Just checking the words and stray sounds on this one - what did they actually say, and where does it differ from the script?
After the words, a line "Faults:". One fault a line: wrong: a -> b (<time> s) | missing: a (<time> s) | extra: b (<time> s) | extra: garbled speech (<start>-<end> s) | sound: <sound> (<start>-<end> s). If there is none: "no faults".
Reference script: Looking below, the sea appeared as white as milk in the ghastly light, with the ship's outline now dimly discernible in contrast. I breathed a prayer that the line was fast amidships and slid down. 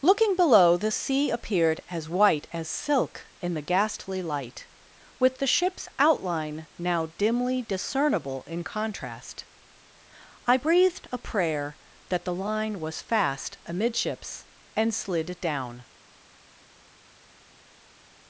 Looking below, the sea appeared as white as silk in the ghastly light, with the ship's outline now dimly discernible in contrast. I breathed a prayer that the line was fast amidships and slid down.
Faults:
wrong: milk -> silk (2.7 s)